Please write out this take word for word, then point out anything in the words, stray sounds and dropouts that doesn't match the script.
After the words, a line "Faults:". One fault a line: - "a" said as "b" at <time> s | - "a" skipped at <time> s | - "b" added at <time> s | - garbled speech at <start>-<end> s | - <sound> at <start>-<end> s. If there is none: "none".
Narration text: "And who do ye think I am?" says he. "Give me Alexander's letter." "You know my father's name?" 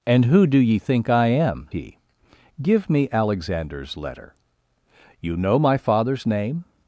"And who do ye think I am?" he. "Give me Alexander's letter." "You know my father's name?"
Faults:
- "says" skipped at 1.7 s